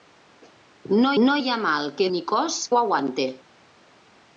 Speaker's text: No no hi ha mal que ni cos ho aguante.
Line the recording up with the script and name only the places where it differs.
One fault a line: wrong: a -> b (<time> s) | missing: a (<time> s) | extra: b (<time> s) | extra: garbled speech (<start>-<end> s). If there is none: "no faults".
no faults